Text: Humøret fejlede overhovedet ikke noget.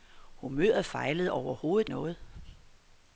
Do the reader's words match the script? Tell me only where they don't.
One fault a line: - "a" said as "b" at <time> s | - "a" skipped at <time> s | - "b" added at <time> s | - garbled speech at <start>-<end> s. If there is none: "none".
- "ikke" skipped at 1.9 s